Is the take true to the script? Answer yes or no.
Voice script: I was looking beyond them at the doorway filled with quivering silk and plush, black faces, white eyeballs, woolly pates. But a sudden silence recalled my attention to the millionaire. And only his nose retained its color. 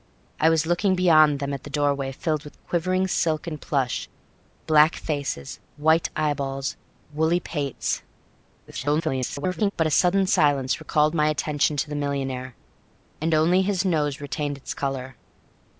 no